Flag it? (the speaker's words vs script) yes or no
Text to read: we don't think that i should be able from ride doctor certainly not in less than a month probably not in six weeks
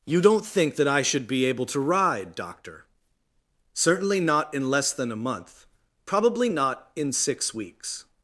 yes